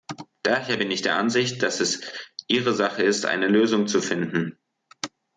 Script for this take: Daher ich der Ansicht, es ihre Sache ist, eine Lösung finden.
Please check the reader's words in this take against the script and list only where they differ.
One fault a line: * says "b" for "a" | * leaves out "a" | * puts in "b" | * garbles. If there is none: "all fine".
* puts in "bin"
* puts in "dass"
* puts in "zu"